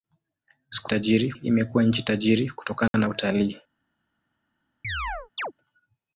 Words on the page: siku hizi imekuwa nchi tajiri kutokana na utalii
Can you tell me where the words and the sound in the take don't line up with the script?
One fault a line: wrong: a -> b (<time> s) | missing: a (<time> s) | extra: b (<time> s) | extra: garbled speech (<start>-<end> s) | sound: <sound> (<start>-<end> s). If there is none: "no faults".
wrong: hizi -> tajiri (0.9 s)
sound: dropout (2.9-2.9 s)
sound: chirp (4.8-5.5 s)